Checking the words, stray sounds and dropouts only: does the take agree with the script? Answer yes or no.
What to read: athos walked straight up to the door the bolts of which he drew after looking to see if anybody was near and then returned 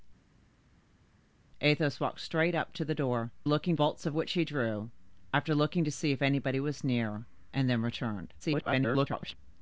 no